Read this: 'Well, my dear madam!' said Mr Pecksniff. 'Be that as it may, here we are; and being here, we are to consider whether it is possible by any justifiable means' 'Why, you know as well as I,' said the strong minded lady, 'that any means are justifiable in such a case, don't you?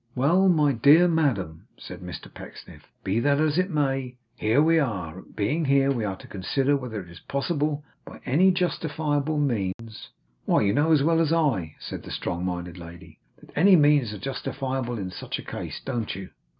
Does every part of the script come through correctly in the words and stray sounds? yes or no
no